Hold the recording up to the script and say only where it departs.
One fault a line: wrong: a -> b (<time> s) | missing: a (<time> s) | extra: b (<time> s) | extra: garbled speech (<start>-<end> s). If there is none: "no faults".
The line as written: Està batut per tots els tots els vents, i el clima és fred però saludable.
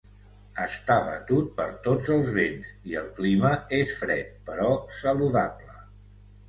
missing: tots els (2.3 s)